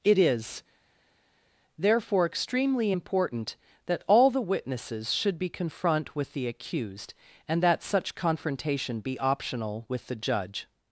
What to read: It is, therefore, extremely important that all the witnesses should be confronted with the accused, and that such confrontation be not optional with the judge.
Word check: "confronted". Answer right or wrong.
wrong